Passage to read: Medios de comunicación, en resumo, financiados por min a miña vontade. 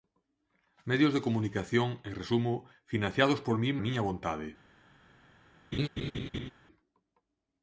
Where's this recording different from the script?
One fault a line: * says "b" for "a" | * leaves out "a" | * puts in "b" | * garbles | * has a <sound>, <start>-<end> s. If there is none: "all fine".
* has a laugh, 5.7-6.5 s